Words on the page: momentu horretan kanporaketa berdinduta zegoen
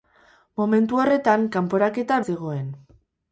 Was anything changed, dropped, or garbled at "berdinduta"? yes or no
yes